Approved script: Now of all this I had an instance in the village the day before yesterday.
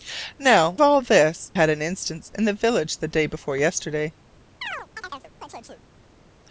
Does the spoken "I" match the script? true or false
false